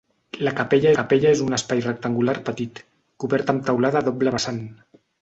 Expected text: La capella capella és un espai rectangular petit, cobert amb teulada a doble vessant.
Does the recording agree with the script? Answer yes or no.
yes